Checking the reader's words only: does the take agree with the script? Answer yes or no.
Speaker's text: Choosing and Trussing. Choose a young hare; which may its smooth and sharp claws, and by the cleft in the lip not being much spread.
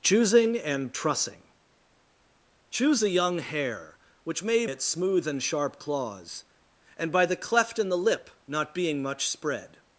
yes